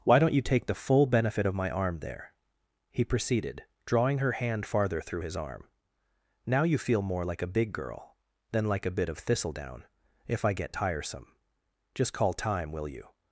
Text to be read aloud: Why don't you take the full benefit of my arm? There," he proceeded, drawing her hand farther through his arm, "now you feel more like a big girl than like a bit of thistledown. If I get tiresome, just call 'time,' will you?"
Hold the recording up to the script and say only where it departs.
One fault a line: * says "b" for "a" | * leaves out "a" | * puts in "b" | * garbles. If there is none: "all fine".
all fine